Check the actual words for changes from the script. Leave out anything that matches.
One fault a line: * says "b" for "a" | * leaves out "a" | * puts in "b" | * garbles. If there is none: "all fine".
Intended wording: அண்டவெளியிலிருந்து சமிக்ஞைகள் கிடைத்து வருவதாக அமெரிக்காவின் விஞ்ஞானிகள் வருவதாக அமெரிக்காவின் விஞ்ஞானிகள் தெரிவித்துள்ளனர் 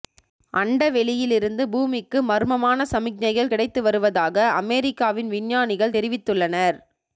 * puts in "பூமிக்கு மர்மமான"
* leaves out "வருவதாக அமெரிக்காவின் விஞ்ஞானிகள்"